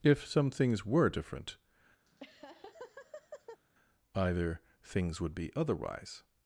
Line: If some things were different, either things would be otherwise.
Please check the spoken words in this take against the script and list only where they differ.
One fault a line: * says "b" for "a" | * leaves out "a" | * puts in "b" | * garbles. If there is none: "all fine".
all fine